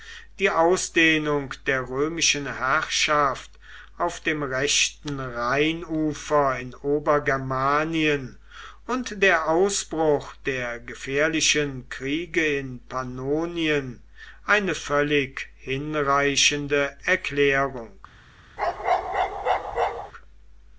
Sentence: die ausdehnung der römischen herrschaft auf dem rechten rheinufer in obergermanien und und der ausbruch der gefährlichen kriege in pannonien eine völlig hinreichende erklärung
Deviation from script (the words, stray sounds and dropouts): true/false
true